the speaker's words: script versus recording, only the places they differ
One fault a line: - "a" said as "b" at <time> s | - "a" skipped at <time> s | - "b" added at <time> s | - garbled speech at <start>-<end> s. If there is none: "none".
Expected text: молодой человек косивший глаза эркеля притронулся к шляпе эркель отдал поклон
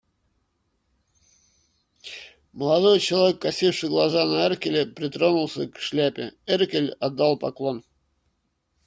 - "на" added at 4.2 s